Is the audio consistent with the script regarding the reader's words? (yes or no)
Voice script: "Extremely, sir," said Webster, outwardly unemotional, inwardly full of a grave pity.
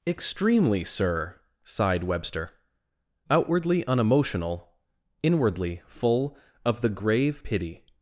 no